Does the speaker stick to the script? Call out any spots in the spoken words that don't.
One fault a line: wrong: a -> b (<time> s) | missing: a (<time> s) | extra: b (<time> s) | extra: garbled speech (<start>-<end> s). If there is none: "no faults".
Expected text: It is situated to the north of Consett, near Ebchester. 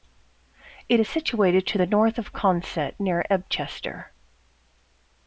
no faults